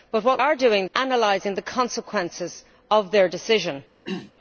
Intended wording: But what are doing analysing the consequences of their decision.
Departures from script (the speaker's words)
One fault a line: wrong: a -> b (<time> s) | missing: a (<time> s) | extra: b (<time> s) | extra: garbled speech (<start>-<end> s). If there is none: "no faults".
no faults